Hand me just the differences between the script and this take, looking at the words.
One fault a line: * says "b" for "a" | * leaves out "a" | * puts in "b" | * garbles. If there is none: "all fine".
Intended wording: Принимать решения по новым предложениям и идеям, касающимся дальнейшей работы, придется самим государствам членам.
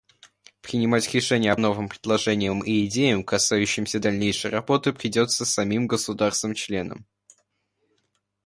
* leaves out "по"